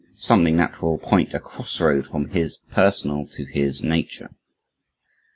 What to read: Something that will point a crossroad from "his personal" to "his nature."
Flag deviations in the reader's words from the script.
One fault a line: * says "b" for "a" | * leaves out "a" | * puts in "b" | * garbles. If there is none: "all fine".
all fine